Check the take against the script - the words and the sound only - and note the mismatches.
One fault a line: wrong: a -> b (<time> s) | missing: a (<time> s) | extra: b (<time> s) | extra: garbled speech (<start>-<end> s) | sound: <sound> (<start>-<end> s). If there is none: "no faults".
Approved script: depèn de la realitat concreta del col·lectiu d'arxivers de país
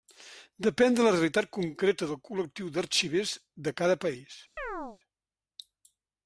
extra: cada (3.8 s)
sound: chirp (4.6-5.0 s)